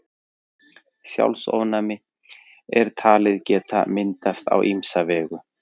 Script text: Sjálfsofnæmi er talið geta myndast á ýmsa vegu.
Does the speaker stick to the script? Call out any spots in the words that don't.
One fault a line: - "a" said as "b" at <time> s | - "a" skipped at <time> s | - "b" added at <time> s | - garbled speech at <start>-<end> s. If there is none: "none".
none